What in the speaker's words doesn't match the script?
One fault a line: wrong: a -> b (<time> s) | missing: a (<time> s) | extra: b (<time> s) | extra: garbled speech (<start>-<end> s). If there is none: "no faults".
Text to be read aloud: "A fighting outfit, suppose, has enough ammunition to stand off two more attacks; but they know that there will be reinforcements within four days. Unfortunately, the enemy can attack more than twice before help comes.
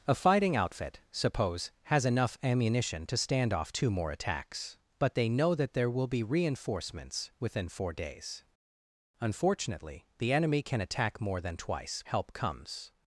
missing: before (12.0 s)